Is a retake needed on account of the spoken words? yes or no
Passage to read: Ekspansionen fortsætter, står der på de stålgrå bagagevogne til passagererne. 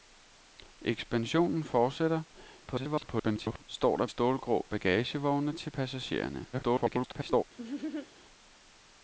yes